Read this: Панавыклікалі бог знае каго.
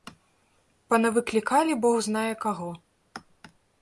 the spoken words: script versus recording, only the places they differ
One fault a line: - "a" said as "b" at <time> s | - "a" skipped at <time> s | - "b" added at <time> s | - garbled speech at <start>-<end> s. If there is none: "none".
none